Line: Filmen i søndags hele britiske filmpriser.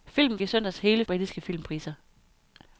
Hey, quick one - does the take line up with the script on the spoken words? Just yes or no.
yes